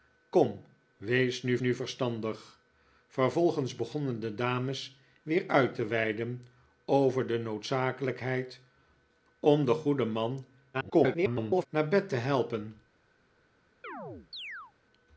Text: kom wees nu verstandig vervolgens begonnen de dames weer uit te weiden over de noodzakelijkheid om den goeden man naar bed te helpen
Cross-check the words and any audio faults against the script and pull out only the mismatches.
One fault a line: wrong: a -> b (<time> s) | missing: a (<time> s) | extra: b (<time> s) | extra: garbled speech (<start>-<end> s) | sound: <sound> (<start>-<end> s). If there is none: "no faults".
extra: nu (1.6 s)
extra: garbled speech (10.7-11.7 s)
sound: chirp (13.8-14.7 s)